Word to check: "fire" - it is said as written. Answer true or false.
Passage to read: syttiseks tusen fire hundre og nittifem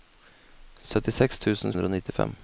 false